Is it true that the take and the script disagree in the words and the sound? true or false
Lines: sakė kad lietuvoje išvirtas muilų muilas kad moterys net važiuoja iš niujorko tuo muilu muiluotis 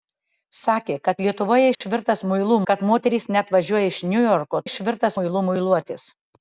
true